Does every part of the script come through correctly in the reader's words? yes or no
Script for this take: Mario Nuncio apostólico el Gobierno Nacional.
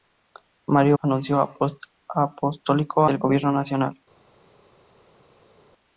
yes